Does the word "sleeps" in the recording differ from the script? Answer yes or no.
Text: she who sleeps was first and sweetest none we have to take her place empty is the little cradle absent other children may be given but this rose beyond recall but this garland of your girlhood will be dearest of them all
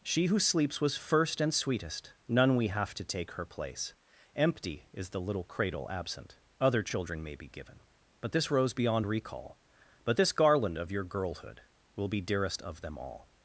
no